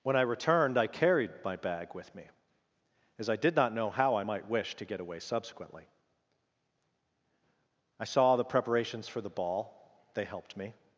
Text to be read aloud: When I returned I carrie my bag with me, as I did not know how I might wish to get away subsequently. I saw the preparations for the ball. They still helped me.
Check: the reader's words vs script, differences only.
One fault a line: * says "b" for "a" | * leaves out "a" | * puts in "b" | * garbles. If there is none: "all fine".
* says "carried" for "carrie"
* leaves out "still"